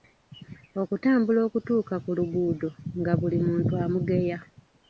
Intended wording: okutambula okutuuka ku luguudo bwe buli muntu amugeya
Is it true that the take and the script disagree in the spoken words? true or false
true